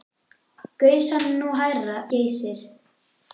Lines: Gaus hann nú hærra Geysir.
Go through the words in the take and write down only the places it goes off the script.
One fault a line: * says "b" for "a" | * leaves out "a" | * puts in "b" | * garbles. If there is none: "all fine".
all fine